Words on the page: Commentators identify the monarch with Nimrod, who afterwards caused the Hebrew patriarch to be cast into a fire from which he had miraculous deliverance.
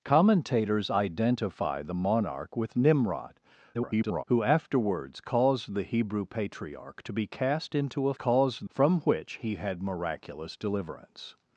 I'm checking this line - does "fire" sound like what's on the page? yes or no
no